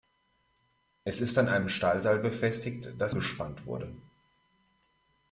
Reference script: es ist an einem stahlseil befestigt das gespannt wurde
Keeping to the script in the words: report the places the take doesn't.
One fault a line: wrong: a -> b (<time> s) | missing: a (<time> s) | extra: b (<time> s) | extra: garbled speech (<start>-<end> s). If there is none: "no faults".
no faults